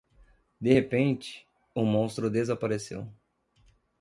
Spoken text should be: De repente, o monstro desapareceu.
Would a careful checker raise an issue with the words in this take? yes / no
no